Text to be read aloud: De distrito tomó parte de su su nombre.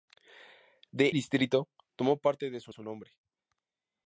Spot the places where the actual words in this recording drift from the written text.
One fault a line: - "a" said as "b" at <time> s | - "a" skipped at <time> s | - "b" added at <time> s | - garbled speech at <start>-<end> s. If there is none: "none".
none